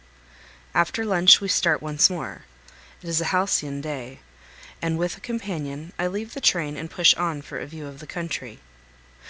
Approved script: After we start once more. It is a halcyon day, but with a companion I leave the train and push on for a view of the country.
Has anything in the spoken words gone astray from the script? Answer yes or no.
yes